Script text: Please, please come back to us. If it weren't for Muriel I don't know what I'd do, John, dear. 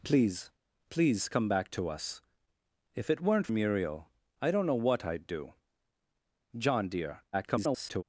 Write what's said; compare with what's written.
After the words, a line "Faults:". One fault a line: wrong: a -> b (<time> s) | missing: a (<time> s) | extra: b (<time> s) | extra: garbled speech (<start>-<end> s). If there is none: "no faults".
Please, please come back to us. If it weren't Muriel I don't know what I'd do, John, dear. [garbled]
Faults:
missing: for (3.5 s)
extra: garbled speech (7.3-8.0 s)